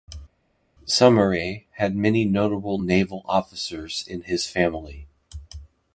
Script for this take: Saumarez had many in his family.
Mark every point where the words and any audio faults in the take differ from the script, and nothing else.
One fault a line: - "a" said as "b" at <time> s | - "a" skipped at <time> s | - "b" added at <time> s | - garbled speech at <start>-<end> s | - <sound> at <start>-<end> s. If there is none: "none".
- "notable naval officers" added at 2.2 s